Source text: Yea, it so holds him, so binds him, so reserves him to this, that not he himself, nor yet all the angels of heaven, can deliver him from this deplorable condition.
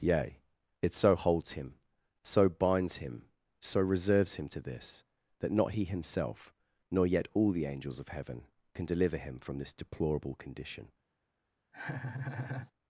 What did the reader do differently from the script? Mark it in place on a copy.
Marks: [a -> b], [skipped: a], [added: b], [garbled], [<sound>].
Yea, it so holds him, so binds him, so reserves him to this, that not he himself, nor yet all the angels of heaven, can deliver him from this deplorable condition. [laugh]